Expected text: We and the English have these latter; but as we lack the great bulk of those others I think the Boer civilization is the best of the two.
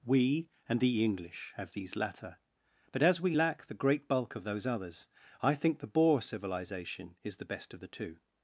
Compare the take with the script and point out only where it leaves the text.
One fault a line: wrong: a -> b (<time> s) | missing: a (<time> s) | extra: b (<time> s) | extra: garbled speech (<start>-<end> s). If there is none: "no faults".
no faults